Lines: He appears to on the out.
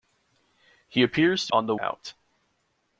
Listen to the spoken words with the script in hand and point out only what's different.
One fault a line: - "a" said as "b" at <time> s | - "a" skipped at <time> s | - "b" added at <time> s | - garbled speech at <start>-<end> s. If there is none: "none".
none